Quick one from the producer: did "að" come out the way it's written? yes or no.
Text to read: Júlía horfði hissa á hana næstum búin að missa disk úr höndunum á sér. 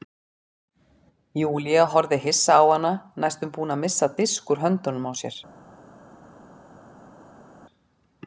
yes